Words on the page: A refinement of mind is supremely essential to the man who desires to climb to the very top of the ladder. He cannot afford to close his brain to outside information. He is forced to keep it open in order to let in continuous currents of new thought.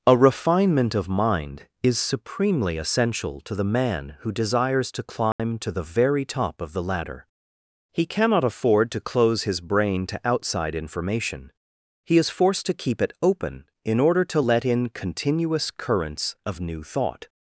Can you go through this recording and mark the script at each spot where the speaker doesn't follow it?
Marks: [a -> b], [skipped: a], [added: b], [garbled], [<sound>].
A refinement of mind is supremely essential to the man who desires to climb [dropout] to the very top of the ladder. He cannot afford to close his brain to outside information. He is forced to keep it open in order to let in continuous currents of new thought.